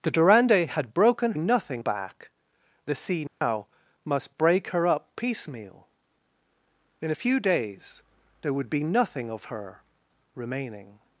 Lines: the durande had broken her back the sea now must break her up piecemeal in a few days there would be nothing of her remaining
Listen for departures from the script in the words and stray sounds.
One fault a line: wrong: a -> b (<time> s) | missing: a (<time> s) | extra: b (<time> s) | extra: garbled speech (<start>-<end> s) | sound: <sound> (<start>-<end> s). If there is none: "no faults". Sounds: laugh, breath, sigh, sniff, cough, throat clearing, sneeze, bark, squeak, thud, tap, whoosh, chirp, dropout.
wrong: her -> nothing (1.4 s)
sound: dropout (3.3-3.4 s)